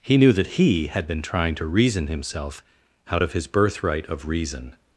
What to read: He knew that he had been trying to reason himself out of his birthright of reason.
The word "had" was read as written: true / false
true